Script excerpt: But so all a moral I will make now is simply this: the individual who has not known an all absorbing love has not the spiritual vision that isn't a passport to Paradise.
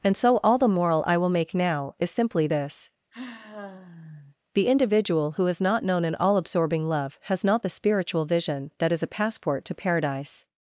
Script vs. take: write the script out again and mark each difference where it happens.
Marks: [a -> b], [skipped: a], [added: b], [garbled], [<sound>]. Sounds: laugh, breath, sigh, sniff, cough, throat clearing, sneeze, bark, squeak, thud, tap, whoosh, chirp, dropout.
[But -> And] so all [a -> the] moral I will make now is simply this: [sigh] the individual who has not known an all absorbing love has not the spiritual vision that [isn't -> is] a passport to Paradise.